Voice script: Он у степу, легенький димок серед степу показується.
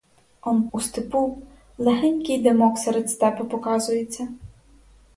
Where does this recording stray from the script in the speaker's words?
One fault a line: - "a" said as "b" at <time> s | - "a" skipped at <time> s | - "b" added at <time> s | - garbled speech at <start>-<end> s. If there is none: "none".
none